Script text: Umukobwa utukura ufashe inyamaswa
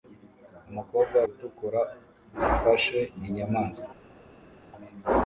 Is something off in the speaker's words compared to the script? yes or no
no